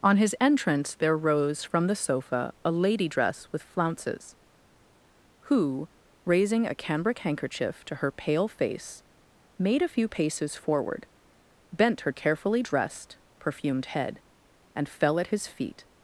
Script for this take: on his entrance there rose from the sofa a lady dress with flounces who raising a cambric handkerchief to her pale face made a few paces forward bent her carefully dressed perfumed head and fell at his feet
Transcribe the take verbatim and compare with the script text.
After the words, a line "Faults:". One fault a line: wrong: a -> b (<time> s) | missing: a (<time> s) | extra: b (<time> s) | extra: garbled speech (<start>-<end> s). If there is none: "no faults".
on his entrance there rose from the sofa a lady dress with flounces who raising a cambric handkerchief to her pale face made a few paces forward bent her carefully dressed perfumed head and fell at his feet
Faults:
no faults